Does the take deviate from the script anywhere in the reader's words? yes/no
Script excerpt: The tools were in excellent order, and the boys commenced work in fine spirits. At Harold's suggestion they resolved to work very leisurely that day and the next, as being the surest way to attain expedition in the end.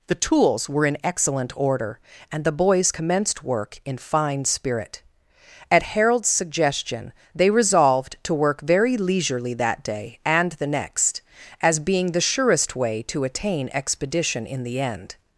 yes